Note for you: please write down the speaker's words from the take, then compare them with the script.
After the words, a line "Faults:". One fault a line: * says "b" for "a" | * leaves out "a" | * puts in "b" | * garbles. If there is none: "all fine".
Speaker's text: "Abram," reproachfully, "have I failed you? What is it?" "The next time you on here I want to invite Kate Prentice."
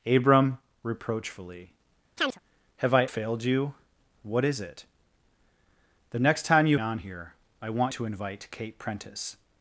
"Abram," reproachfully, "have I failed you? What is it?" "The next time you on here I want to invite Kate Prentice."
Faults:
all fine